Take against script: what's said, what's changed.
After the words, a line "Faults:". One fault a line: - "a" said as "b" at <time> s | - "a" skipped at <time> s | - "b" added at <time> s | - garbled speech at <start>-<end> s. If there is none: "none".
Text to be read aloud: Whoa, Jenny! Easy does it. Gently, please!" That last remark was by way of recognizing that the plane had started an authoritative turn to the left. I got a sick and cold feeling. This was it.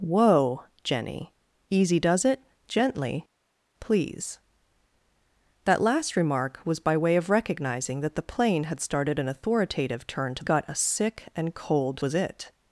Whoa, Jenny! Easy does it. Gently, please!" That last remark was by way of recognizing that the plane had started an authoritative turn to got a sick and cold was it.
Faults:
- "the left I" skipped at 10.4 s
- "feeling This" skipped at 12.0 s